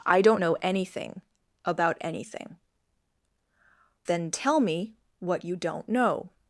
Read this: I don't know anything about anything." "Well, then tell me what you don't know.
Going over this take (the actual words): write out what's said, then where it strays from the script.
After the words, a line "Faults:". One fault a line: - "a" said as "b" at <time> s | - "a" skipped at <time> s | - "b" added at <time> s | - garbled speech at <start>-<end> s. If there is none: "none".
I don't know anything about anything." "Then tell me what you don't know.
Faults:
- "Well" skipped at 2.6 s